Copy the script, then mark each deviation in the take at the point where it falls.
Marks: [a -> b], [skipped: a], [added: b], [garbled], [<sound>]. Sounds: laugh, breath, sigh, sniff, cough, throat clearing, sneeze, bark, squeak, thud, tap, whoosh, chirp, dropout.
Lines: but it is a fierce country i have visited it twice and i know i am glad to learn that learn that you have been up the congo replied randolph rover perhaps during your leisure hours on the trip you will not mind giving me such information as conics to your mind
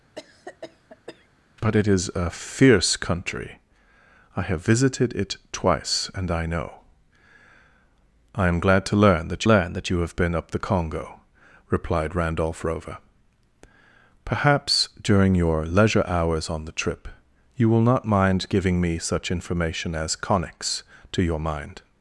[cough] but it is a fierce country i have visited it twice and i know i am glad to learn that learn that you have been up the congo replied randolph rover perhaps during your leisure hours on the trip you will not mind giving me such information as conics to your mind